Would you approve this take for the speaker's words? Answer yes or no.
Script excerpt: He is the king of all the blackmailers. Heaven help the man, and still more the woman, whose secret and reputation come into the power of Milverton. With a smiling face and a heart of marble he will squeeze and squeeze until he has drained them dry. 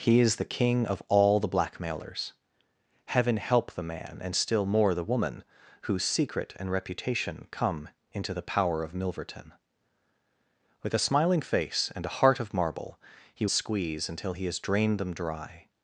no